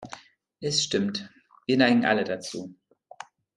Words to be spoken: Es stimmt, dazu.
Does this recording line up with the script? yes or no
no